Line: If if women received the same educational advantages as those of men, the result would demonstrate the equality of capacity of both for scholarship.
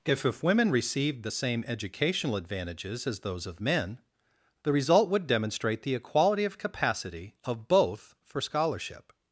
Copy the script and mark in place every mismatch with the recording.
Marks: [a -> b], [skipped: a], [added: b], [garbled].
If if women received the same educational advantages as those of men, the result would demonstrate the equality of capacity of both for scholarship.